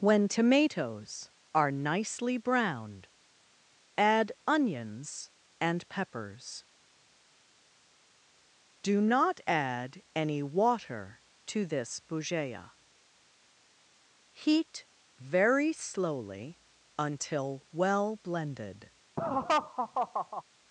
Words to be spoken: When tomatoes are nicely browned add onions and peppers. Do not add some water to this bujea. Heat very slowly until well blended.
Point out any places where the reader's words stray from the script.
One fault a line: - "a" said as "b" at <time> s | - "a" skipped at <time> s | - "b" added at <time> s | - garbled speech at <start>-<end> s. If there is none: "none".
- "some" said as "any" at 10.2 s